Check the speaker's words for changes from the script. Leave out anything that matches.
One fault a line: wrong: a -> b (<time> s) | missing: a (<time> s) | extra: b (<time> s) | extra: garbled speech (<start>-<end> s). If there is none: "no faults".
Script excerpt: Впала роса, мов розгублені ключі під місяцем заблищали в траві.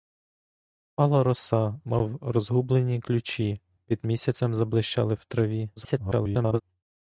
extra: garbled speech (5.8-6.6 s)